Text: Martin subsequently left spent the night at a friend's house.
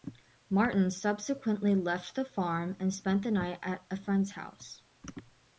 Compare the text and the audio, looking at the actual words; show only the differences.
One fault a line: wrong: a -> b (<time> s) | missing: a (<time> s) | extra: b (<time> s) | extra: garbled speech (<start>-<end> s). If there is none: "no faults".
extra: the farm and (2.1 s)